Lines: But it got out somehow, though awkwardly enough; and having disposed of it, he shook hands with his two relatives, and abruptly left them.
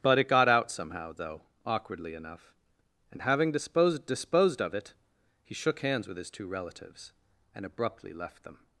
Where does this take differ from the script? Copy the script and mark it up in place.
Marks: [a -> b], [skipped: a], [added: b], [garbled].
But it got out somehow, though awkwardly enough; and having disposed [added: disposed] of it, he shook hands with his two relatives, and abruptly left them.